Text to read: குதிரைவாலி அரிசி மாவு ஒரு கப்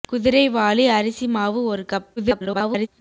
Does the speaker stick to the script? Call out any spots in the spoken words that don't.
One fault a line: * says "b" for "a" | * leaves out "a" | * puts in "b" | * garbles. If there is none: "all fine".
* garbles